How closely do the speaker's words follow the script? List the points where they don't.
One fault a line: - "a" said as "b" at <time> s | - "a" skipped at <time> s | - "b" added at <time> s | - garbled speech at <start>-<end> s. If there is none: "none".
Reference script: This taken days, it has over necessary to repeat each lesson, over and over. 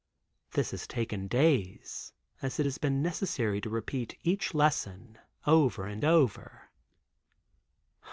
- "has" added at 0.7 s
- "as" added at 2.4 s
- "over" said as "been" at 2.8 s